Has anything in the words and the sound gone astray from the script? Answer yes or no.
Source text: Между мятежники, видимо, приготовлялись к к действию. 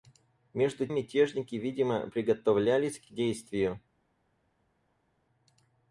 no